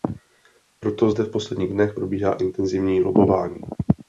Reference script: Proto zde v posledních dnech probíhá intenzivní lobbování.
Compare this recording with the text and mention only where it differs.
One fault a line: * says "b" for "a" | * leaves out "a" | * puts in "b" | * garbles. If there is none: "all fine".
all fine